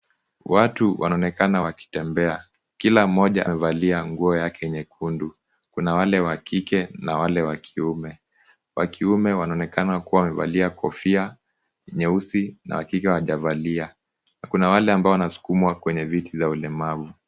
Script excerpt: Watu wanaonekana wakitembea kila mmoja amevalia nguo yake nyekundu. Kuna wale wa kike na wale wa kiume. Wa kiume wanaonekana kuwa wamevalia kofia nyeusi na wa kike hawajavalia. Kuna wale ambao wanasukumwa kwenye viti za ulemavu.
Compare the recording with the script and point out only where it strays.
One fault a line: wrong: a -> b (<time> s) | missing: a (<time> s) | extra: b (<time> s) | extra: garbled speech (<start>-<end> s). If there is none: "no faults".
no faults